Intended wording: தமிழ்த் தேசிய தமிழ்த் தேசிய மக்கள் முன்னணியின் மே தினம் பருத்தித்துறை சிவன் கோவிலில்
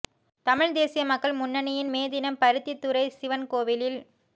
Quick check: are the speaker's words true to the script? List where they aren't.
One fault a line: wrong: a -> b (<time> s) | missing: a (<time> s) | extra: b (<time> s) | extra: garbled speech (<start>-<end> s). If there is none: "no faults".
missing: தமிழ்த் தேசிய (1.0 s)